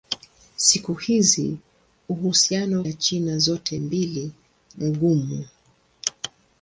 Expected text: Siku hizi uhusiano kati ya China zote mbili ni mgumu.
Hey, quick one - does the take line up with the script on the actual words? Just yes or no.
no